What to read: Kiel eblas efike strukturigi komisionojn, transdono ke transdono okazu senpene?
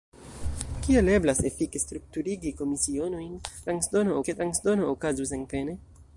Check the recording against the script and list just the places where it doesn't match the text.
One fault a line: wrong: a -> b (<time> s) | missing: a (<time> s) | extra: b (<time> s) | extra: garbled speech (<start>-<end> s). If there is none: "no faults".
no faults